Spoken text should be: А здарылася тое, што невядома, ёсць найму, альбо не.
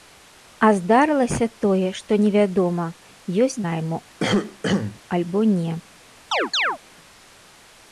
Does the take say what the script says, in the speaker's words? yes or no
yes